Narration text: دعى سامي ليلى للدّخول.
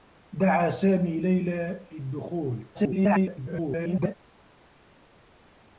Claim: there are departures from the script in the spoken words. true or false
true